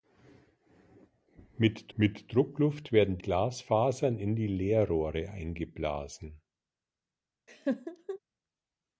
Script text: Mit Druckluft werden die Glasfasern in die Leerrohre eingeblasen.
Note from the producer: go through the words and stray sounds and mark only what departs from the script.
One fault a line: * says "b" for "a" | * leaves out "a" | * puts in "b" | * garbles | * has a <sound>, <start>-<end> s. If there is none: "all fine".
* puts in "mit"
* leaves out "die"
* has a laugh, 7.5-8.2 s